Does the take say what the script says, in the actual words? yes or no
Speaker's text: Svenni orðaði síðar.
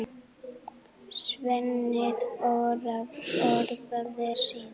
yes